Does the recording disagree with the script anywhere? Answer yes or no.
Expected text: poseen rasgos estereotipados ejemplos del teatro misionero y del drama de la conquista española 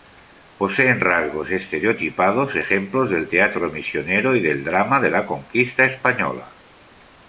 no